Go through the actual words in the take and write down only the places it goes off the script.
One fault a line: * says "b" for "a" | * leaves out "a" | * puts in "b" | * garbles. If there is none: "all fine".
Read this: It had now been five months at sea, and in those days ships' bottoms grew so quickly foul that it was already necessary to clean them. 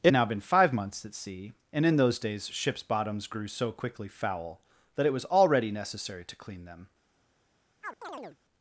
* leaves out "had"